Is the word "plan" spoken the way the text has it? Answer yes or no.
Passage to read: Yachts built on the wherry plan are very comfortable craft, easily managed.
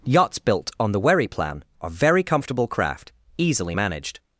yes